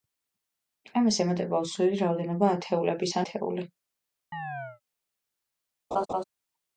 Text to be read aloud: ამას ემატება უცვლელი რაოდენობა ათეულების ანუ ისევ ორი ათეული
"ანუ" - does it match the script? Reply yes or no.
no